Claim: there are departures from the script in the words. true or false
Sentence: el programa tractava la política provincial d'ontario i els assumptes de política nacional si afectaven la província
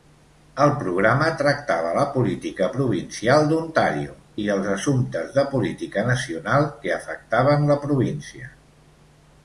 true